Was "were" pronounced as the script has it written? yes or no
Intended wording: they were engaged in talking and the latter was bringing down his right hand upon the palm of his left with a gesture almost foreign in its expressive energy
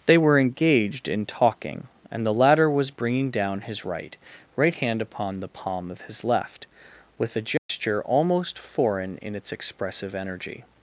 yes